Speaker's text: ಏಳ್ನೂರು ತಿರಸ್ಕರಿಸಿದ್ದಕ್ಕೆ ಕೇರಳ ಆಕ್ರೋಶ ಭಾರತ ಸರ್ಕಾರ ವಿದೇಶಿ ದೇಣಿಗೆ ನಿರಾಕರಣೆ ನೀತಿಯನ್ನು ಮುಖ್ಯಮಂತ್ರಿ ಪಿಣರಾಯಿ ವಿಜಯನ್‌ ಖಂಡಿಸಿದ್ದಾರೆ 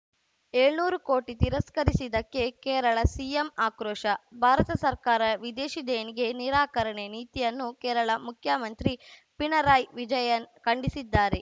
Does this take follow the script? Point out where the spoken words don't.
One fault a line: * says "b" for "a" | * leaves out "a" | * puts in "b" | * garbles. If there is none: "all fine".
* puts in "ಕೋಟಿ"
* puts in "ಸಿಎಂ"
* puts in "ಕೇರಳ"